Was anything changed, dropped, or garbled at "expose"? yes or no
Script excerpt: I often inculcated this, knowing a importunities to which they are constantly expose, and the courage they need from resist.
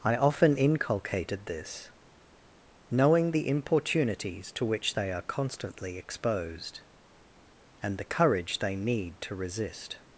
yes